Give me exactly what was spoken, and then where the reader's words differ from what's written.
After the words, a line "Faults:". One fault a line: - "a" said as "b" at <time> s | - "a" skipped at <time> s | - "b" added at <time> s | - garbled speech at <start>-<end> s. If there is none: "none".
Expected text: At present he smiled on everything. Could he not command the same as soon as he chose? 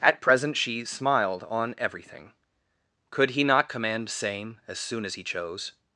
At present she smiled on everything. Could he not command same as soon as he chose?
Faults:
- "he" said as "she" at 0.6 s
- "the" skipped at 4.1 s